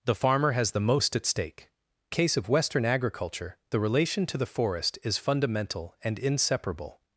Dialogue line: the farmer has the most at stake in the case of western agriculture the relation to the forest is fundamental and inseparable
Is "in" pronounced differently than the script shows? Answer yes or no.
yes